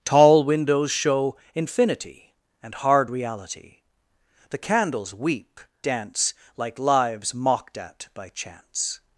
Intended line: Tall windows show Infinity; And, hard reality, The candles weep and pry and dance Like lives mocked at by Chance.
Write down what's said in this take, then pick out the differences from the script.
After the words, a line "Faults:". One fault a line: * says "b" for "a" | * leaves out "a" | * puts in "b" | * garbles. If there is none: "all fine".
Tall windows show Infinity; And, hard reality, The candles weep dance Like lives mocked at by Chance.
Faults:
* leaves out "and pry and"